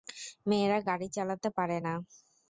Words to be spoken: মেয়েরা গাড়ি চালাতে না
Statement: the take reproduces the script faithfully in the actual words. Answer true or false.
false